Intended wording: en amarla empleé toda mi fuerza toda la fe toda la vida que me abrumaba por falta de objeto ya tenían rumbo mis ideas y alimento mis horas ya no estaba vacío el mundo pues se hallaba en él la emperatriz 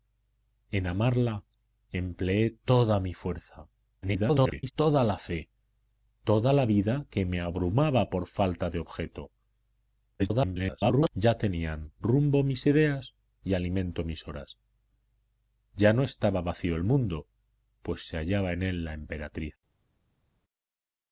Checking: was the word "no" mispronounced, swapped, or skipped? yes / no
no